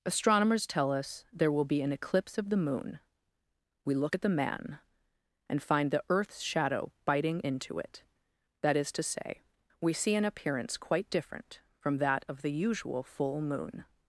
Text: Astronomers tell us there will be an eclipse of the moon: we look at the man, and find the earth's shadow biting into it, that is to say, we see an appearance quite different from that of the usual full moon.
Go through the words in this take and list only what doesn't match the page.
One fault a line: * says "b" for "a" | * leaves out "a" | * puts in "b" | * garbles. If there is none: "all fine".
all fine